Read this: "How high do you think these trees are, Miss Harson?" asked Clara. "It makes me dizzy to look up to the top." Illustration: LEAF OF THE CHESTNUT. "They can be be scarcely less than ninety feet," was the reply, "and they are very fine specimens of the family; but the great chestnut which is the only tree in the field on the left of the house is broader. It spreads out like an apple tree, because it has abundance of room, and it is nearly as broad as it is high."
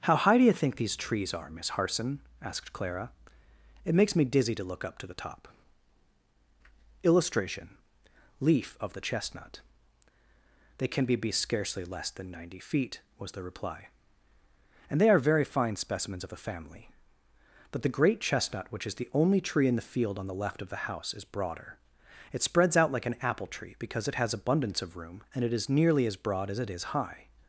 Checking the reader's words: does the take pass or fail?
pass